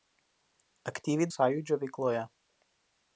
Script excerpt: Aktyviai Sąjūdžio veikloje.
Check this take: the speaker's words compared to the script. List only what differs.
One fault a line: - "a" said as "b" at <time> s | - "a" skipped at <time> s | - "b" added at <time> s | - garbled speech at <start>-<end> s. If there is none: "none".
none